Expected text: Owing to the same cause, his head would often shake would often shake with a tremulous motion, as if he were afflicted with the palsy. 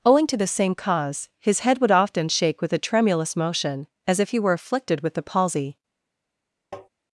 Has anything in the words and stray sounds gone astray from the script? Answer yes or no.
yes